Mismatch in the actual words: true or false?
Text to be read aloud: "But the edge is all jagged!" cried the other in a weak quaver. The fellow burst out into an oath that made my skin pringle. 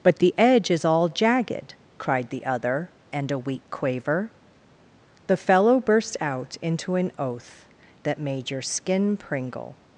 true